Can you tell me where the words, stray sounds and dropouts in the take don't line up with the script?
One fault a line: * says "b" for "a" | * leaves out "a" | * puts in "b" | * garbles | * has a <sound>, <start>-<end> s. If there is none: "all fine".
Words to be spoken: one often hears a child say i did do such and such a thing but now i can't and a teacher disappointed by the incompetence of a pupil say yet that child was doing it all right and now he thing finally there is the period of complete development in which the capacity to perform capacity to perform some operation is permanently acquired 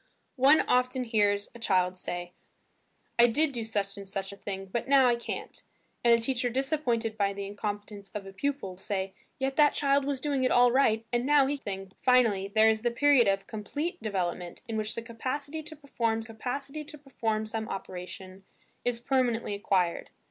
all fine